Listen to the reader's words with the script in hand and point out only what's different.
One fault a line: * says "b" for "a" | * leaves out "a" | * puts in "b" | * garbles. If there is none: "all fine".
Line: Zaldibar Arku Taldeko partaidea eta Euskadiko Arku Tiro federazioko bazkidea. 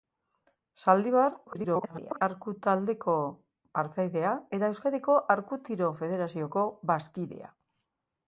* garbles